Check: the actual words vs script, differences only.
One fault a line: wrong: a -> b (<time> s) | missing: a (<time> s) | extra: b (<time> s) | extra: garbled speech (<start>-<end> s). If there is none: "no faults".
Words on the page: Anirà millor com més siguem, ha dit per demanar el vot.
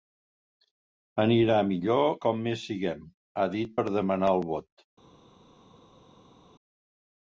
no faults